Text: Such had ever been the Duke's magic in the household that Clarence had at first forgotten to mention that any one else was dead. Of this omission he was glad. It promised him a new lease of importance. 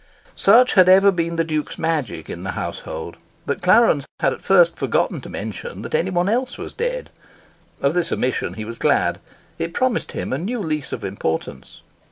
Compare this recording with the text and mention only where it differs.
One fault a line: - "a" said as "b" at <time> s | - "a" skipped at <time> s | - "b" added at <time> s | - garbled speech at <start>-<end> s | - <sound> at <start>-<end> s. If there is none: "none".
none